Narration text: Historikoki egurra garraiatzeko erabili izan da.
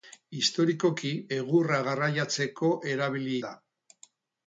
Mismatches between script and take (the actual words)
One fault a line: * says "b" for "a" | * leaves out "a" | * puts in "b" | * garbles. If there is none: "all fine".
* leaves out "izan"